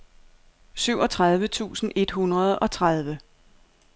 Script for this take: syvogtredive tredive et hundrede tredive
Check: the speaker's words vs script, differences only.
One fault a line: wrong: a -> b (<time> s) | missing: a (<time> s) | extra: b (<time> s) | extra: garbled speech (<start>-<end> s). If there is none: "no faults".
wrong: tredive -> tusind (1.5 s)
extra: og (2.6 s)